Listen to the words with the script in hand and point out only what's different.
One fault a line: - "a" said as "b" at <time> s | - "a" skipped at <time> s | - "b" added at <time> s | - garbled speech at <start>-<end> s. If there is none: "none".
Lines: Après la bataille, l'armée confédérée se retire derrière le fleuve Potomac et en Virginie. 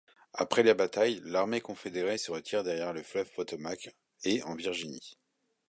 none